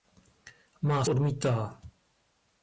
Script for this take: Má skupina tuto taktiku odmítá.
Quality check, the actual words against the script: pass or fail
fail